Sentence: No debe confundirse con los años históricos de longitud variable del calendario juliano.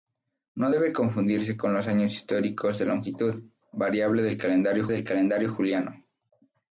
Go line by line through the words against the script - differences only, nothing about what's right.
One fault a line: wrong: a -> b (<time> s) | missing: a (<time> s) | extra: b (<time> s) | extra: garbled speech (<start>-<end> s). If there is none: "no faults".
extra: del calendario (4.9 s)